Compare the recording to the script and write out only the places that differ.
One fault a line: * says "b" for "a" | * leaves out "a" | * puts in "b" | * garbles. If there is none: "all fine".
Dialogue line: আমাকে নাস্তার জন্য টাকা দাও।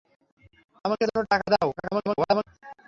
* leaves out "নাস্তার"
* garbles